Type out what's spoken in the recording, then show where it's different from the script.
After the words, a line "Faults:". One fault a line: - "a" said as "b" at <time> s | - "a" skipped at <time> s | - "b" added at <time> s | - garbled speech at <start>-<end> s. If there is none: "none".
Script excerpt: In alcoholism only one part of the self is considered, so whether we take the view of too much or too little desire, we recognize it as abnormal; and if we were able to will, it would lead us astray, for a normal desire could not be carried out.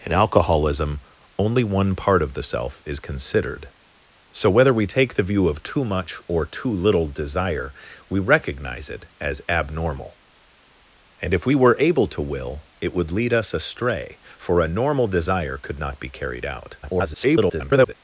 In alcoholism only one part of the self is considered, so whether we take the view of too much or too little desire, we recognize it as abnormal; and if we were able to will, it would lead us astray, for a normal desire could not be carried out. [garbled]
Faults:
- garbled speech at 16.8-17.9 s